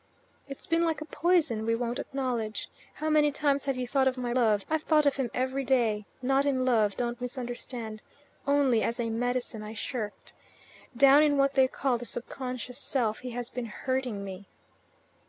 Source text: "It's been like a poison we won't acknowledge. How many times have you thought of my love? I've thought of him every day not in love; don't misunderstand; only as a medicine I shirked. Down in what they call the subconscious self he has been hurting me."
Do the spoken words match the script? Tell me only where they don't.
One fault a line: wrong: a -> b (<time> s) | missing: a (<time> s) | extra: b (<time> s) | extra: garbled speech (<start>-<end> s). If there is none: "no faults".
no faults